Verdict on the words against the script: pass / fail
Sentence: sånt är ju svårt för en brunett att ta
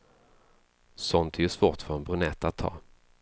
pass